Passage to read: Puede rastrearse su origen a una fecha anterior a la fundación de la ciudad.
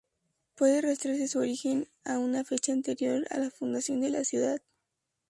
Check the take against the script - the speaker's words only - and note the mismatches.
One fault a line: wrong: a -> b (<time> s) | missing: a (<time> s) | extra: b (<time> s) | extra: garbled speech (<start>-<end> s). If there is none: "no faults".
no faults